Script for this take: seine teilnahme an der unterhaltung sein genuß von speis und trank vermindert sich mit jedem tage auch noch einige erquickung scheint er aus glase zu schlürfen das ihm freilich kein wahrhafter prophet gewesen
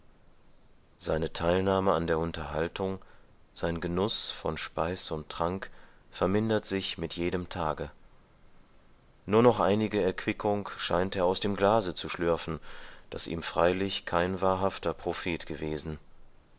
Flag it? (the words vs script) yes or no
yes